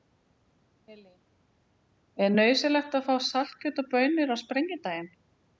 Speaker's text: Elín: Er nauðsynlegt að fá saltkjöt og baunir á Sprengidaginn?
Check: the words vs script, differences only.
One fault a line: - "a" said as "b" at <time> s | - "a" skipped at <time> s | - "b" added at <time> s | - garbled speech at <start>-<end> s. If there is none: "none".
none